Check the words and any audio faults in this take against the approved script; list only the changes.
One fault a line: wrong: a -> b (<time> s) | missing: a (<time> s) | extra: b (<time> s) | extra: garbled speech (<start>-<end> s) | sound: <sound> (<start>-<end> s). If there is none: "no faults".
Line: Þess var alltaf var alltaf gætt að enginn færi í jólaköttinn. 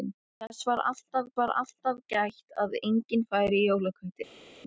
no faults